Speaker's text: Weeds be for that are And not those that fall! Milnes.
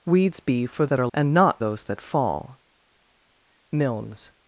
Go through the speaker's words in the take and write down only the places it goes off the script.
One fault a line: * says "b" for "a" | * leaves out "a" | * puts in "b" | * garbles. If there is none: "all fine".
all fine